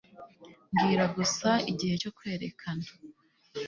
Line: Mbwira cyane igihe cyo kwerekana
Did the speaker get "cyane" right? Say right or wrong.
wrong